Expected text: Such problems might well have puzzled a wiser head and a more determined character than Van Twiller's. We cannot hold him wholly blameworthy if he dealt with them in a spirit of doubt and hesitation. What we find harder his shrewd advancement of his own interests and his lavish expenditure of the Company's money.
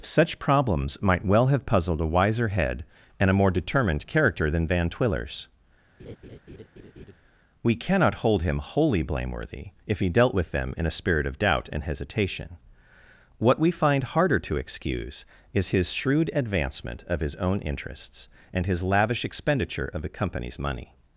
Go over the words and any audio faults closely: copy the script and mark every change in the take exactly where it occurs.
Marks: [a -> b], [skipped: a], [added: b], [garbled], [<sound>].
Such problems might well have puzzled a wiser head and a more determined character than Van Twiller's. [laugh] We cannot hold him wholly blameworthy if he dealt with them in a spirit of doubt and hesitation. What we find harder [added: to excuse is] his shrewd advancement of his own interests and his lavish expenditure of the Company's money.